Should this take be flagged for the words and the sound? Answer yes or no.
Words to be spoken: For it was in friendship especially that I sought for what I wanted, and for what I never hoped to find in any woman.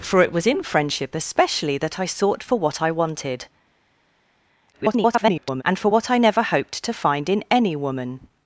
yes